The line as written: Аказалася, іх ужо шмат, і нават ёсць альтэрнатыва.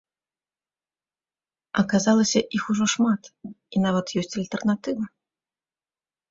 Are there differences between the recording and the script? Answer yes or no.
no